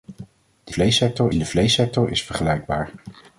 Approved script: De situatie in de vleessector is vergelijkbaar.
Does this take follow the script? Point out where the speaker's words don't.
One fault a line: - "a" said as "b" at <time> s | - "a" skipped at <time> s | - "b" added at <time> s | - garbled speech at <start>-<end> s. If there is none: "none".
- "situatie" said as "vleessector" at 0.7 s